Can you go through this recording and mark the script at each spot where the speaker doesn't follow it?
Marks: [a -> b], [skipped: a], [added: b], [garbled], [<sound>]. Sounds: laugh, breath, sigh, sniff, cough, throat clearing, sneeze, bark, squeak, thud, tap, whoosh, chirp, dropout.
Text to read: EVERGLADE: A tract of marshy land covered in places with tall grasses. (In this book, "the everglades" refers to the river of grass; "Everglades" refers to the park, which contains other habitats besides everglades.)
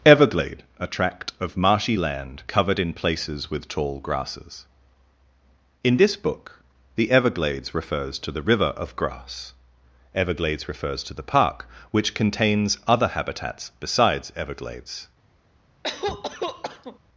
EVERGLADE: A tract of marshy land covered in places with tall grasses. (In this book, "the everglades" refers to the river of grass; "Everglades" refers to the park, which contains other habitats besides everglades.) [cough]